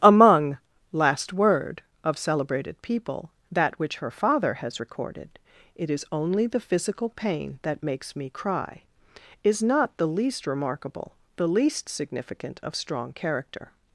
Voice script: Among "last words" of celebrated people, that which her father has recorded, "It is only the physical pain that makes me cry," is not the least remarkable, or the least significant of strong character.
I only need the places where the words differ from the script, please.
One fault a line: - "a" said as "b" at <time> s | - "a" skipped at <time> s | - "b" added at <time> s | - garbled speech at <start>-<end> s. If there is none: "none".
- "words" said as "word" at 1.3 s
- "or" skipped at 11.1 s